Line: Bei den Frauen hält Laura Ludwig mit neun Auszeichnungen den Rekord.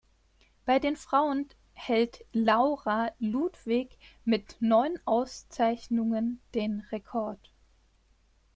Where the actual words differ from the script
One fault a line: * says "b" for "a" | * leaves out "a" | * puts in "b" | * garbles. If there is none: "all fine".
all fine